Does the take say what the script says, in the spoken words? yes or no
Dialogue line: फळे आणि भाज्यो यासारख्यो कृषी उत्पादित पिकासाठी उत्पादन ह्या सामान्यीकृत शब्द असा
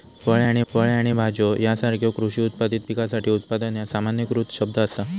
no